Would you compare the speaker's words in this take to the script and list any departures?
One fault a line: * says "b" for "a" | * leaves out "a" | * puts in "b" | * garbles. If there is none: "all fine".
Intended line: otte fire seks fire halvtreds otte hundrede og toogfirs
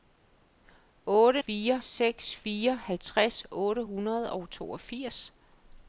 all fine